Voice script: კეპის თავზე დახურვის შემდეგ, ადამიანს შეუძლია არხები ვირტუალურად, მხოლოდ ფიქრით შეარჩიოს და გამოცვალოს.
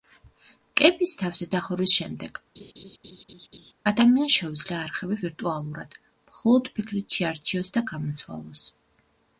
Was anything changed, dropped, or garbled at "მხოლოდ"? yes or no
no